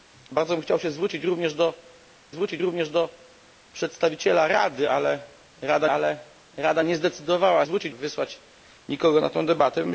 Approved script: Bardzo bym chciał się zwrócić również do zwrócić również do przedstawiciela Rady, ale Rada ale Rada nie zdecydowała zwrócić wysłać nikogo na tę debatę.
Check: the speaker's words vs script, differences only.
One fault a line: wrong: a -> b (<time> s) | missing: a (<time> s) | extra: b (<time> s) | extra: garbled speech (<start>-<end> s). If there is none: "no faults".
no faults